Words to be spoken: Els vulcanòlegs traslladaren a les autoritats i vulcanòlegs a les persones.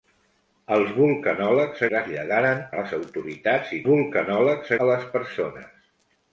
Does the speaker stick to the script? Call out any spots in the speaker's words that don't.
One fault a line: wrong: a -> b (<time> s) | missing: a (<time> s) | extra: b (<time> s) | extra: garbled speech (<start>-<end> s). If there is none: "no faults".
no faults